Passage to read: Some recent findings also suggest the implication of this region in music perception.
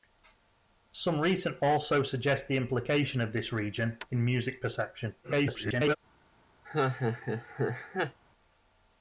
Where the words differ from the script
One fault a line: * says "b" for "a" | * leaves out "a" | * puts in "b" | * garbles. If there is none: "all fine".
* leaves out "findings"
* garbles